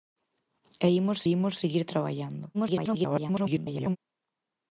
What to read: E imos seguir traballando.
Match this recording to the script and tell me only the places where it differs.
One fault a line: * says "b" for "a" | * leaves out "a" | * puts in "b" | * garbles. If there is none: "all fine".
* puts in "imos"
* garbles